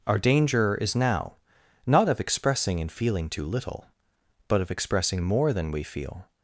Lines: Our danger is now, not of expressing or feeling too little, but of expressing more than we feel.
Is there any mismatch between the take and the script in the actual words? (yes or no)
yes